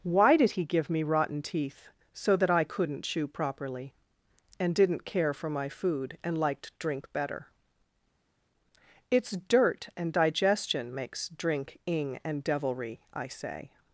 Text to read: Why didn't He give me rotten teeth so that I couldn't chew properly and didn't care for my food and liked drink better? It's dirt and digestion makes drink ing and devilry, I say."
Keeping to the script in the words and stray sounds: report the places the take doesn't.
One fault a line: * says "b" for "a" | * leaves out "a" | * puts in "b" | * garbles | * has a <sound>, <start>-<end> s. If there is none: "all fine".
* says "did" for "didn't"